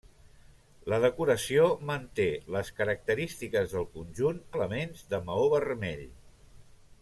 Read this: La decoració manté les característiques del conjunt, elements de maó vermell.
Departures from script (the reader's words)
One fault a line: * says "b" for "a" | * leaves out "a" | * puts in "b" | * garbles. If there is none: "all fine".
all fine